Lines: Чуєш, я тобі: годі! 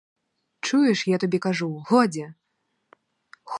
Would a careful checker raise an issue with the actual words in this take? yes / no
yes